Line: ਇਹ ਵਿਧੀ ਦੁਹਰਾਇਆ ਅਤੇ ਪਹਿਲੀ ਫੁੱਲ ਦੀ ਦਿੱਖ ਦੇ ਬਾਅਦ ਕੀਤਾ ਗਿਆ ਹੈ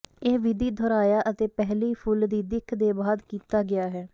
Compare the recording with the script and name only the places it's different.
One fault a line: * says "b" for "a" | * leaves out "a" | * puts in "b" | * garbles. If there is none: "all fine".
all fine